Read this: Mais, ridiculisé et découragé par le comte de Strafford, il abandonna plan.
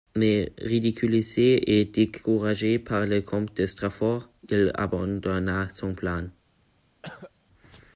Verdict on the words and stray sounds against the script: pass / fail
fail